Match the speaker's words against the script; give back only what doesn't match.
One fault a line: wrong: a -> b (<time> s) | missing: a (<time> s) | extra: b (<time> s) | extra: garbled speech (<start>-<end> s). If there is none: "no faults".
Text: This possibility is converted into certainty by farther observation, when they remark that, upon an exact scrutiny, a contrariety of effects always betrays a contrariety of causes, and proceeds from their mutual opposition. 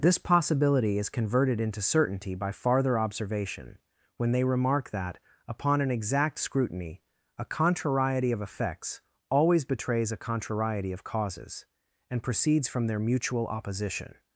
no faults